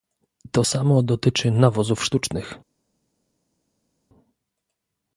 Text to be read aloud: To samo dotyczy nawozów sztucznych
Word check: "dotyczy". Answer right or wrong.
right